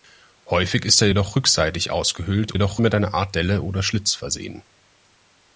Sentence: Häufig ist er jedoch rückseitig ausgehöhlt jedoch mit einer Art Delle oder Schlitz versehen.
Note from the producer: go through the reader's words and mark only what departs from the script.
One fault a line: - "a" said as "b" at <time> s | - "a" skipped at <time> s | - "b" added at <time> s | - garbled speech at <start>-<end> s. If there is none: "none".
none